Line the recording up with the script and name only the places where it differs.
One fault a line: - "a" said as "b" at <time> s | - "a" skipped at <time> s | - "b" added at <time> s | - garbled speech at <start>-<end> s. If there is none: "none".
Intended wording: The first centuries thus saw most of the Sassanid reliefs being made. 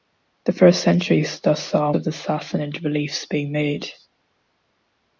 - "most" skipped at 1.9 s